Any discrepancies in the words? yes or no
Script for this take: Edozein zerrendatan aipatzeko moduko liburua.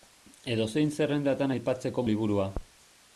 yes